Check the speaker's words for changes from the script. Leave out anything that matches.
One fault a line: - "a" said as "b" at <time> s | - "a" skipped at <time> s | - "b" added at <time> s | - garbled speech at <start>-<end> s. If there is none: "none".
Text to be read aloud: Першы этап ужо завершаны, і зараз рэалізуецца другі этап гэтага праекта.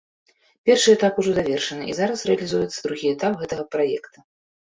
none